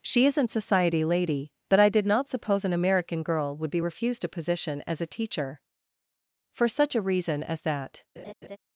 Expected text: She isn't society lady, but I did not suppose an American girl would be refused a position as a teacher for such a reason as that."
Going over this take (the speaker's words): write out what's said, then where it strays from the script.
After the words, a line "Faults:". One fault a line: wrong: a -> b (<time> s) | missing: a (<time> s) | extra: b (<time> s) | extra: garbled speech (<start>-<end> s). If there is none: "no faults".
She isn't society lady, but I did not suppose an American girl would be refused a position as a teacher for such a reason as that."
Faults:
no faults